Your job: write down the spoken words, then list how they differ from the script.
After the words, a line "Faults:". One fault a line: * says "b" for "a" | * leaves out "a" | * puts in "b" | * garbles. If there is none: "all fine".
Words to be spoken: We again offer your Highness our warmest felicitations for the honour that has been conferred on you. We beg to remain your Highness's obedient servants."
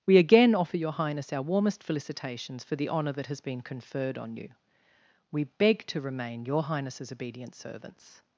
We again offer your Highness our warmest felicitations for the honour that has been conferred on you. We beg to remain your Highness's obedient servants."
Faults:
all fine